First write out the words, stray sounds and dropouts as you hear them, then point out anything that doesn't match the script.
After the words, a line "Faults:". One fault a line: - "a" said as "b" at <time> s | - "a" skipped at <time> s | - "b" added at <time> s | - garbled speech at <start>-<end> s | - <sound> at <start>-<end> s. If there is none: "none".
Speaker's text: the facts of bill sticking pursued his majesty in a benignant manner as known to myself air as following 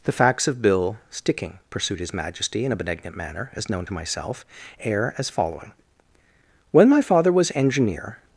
the facts of bill sticking pursued his majesty in a benignant manner as known to myself air as following when my father was engineer
Faults:
- "when my father was engineer" added at 6.7 s